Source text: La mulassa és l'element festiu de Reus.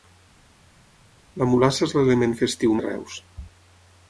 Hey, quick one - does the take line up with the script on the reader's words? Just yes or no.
yes